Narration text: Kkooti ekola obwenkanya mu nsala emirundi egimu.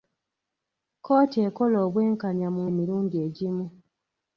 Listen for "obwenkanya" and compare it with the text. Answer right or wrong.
right